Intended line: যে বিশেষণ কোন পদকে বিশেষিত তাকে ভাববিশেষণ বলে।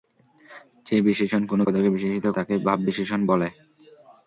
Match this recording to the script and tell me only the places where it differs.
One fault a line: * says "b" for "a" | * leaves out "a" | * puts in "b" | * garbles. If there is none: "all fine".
all fine